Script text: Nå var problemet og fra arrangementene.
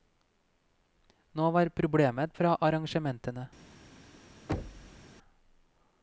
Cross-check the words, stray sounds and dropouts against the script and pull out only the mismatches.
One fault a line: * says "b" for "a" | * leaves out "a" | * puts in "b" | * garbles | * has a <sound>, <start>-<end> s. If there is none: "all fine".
* has a thud, 4.5-5.1 s